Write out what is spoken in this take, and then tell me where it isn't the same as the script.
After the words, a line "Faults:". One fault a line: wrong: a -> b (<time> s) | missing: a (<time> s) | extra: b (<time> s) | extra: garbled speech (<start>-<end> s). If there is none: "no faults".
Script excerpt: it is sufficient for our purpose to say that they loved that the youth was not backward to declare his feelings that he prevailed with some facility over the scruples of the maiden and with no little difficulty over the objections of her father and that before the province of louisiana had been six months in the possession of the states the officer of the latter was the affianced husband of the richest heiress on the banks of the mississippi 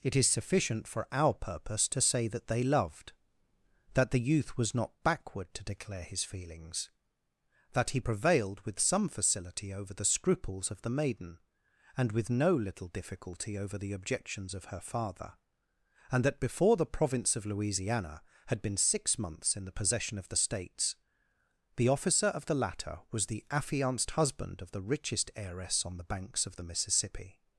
it is sufficient for our purpose to say that they loved that the youth was not backward to declare his feelings that he prevailed with some facility over the scruples of the maiden and with no little difficulty over the objections of her father and that before the province of louisiana had been six months in the possession of the states the officer of the latter was the affianced husband of the richest heiress on the banks of the mississippi
Faults:
no faults